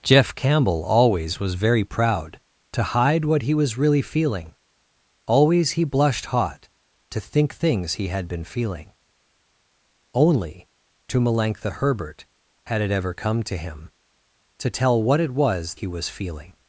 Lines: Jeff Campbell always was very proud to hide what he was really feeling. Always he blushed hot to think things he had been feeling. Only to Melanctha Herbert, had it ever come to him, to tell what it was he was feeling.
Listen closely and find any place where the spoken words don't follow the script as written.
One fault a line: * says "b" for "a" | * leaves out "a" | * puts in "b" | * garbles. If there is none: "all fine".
all fine